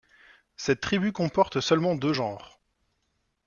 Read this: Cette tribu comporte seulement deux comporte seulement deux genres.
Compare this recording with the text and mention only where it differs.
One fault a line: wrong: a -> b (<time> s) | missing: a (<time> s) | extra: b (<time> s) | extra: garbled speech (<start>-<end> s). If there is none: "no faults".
missing: comporte seulement deux (2.1 s)